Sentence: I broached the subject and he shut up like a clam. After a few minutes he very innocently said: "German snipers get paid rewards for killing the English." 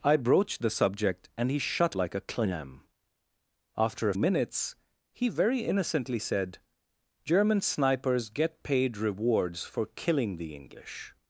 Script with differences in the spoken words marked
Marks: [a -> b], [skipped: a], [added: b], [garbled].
I broached the subject and he shut [skipped: up] like a clam. After a [skipped: few] minutes he very innocently said: "German snipers get paid rewards for killing the English."